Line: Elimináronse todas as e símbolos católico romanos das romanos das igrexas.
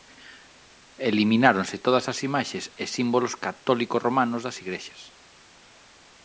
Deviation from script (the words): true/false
true